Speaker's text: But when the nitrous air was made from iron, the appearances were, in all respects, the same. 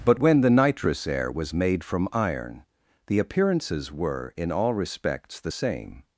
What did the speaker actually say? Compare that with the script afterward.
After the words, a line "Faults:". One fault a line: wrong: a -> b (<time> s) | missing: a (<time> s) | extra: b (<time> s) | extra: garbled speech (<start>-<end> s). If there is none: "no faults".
But when the nitrous air was made from iron, the appearances were, in all respects, the same.
Faults:
no faults